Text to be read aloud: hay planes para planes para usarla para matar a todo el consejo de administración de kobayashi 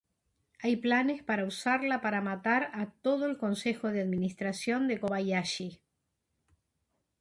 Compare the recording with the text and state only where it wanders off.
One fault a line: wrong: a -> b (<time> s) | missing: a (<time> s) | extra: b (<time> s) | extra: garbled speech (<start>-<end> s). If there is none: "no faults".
missing: planes para (1.4 s)